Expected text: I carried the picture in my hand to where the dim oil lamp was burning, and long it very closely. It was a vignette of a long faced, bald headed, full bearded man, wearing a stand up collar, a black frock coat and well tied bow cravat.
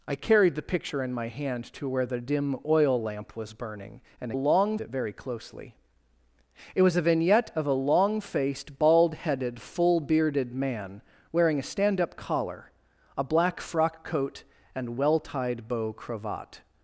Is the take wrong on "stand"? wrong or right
right